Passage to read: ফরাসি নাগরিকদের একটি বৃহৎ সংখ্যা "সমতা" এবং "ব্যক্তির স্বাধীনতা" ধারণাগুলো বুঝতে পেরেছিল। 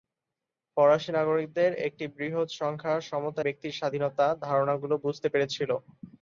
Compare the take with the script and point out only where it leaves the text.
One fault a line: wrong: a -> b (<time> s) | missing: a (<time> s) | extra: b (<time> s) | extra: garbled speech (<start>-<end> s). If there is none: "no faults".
missing: এবং (3.4 s)